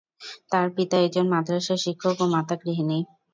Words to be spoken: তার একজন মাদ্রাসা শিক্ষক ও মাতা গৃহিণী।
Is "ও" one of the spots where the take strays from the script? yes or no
no